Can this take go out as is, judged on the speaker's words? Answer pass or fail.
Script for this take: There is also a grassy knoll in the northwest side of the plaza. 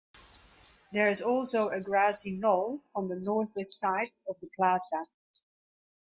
fail